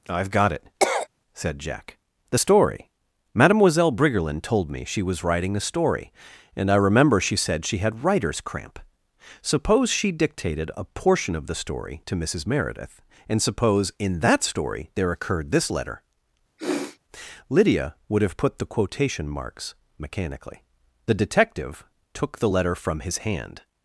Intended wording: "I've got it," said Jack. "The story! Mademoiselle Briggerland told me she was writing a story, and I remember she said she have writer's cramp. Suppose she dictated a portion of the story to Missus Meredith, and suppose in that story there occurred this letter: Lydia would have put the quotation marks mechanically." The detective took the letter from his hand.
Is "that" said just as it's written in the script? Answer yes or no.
yes